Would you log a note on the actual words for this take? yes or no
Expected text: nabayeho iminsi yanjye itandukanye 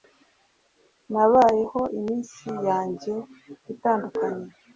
no